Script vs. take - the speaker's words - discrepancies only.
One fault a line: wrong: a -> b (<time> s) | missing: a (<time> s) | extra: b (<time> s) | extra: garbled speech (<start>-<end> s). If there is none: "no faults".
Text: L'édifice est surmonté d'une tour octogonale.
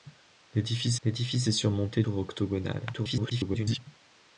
extra: l'édifice (1.0 s)
missing: d'une (2.0 s)
extra: garbled speech (2.9-3.8 s)